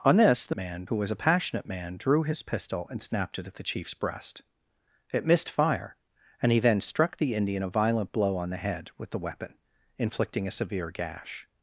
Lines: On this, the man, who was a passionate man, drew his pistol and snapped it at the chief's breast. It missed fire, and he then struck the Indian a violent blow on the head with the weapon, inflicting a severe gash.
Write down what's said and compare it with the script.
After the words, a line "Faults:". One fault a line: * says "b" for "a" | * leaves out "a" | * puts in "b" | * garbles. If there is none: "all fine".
On this, the man, who was a passionate man, drew his pistol and snapped it at the chief's breast. It missed fire, and he then struck the Indian a violent blow on the head with the weapon, inflicting a severe gash.
Faults:
all fine